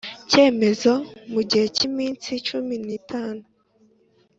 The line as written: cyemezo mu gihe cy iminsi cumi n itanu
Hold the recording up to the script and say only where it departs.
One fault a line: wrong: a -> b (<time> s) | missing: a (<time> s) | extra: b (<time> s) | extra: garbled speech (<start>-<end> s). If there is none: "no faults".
no faults